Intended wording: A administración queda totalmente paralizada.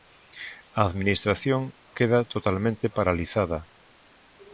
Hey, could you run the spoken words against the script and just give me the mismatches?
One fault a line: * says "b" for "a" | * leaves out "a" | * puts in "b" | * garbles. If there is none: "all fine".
all fine